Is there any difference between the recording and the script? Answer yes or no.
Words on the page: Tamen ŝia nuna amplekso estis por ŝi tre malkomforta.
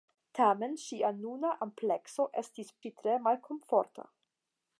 yes